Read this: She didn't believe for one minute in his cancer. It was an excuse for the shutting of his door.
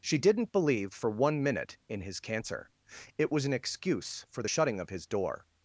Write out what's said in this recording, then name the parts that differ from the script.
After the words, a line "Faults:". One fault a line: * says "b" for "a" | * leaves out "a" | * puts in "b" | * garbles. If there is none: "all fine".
She didn't believe for one minute in his cancer. It was an excuse for the shutting of his door.
Faults:
all fine